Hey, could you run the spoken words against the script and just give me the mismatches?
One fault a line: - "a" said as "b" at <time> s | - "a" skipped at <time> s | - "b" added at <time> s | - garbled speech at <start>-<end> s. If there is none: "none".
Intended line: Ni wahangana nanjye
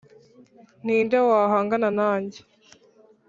- "nde" added at 1.0 s